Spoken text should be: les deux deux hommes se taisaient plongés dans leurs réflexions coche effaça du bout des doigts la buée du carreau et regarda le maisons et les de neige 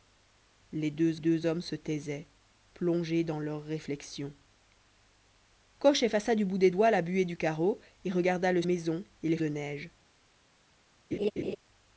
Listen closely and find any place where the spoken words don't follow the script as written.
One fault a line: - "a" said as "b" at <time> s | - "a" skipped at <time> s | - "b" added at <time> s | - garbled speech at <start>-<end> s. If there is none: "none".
none